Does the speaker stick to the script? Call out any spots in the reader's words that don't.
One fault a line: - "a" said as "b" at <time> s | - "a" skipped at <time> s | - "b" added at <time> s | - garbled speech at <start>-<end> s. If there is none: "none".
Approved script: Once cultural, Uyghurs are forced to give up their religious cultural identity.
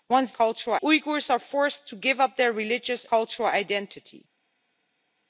none